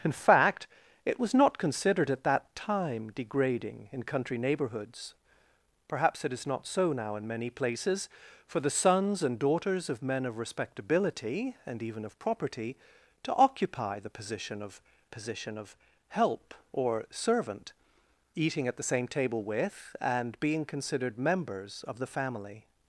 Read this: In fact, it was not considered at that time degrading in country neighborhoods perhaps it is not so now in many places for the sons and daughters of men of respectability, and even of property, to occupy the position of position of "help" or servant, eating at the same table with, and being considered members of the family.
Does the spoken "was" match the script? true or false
true